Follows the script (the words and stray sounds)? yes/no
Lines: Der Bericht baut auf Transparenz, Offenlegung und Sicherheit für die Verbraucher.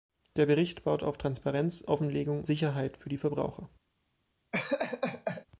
no